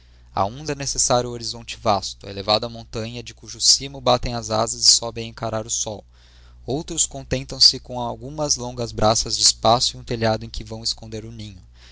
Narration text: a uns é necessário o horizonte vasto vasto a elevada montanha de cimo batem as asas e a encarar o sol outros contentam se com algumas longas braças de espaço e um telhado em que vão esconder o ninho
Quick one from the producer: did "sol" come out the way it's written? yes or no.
yes